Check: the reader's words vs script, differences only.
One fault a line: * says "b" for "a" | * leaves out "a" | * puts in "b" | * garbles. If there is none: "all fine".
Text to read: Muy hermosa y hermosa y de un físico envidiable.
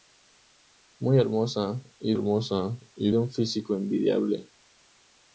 all fine